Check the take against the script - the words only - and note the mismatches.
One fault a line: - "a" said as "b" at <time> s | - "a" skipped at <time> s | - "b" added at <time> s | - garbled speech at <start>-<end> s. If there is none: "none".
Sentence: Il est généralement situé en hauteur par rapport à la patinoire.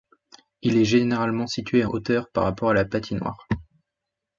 - "en" skipped at 1.9 s